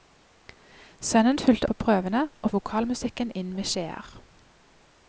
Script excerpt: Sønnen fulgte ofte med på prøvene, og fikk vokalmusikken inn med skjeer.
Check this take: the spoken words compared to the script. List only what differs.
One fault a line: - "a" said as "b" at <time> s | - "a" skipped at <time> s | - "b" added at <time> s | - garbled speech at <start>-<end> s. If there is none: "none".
- "ofte med" skipped at 1.7 s
- "fikk" skipped at 2.5 s